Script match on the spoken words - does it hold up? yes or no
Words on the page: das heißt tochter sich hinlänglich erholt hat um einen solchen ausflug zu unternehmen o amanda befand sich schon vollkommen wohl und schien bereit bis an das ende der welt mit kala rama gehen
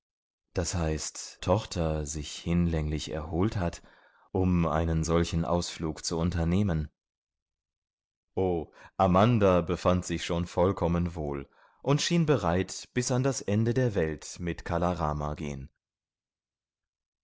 yes